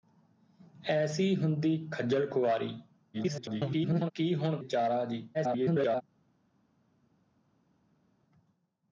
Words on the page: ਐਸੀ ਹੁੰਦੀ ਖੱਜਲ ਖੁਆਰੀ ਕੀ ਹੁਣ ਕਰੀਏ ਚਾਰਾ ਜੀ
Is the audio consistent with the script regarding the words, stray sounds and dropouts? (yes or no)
no